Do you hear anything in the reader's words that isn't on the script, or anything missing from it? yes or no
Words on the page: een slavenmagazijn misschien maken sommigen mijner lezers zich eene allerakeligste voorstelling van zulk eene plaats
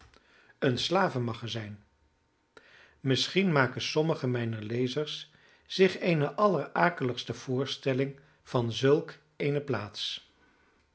no